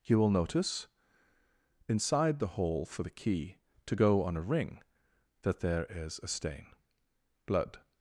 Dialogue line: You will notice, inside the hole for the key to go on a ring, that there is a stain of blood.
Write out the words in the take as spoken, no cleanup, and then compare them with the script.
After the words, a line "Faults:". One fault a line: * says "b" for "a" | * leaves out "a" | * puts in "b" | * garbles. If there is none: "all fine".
You will notice, inside the hole for the key to go on a ring, that there is a stain blood.
Faults:
* leaves out "of"